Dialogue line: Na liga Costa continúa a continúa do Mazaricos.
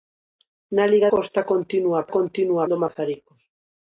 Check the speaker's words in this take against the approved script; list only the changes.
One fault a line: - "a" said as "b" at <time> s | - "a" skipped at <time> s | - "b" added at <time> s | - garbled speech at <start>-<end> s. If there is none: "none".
none